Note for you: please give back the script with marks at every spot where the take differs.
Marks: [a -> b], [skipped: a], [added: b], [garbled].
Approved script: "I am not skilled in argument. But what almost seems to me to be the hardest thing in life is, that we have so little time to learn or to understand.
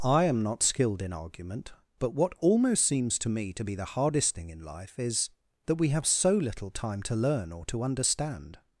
"I am not skilled in argument. But what almost seems to me to be the hardest thing in life is, that we have so little time to learn or to understand.